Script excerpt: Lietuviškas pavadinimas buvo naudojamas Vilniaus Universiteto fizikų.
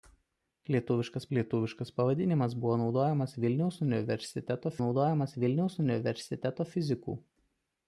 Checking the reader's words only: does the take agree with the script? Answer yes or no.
no